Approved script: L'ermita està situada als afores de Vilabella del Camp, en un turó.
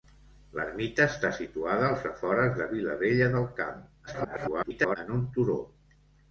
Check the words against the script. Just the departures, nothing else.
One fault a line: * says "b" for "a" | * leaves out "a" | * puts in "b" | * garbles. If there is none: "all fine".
* garbles